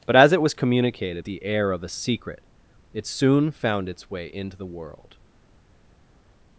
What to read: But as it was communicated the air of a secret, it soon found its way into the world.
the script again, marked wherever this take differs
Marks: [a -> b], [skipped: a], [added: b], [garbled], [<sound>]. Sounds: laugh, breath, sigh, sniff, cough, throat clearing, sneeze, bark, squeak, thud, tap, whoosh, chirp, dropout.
But as it was communicated the air of a secret, it soon found its way into the world.